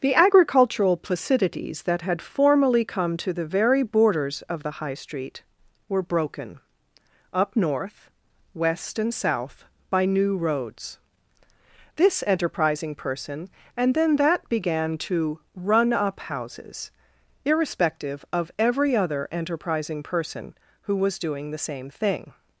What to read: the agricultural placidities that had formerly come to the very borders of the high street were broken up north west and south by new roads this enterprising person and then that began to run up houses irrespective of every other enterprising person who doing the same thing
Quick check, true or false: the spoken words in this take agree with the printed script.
false